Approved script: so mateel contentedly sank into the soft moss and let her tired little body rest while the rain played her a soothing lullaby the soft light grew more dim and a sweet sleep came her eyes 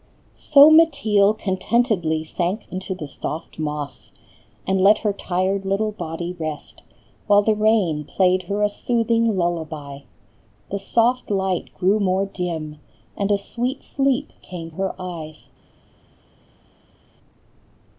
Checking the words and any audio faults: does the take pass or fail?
pass